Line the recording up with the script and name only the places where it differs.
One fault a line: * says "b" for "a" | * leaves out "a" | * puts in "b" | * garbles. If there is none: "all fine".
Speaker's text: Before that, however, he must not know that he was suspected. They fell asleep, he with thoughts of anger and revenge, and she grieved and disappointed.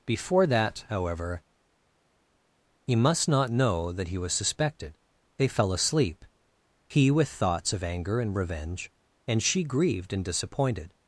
all fine